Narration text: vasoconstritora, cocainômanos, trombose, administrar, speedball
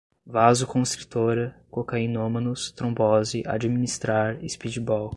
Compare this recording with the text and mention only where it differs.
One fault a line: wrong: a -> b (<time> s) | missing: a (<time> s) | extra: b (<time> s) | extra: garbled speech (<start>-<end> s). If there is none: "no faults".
no faults